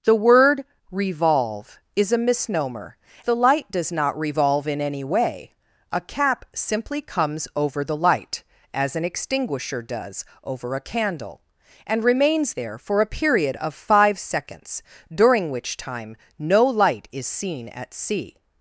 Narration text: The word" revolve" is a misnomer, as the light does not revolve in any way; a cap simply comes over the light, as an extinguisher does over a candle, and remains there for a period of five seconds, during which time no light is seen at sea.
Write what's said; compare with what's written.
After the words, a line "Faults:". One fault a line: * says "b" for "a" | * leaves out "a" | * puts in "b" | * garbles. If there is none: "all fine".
The word" revolve" is a misnomer, the light does not revolve in any way; a cap simply comes over the light, as an extinguisher does over a candle, and remains there for a period of five seconds, during which time no light is seen at sea.
Faults:
* leaves out "as"